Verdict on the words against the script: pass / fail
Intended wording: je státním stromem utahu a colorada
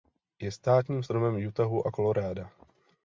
pass